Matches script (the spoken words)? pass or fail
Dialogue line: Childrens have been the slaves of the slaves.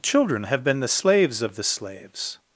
fail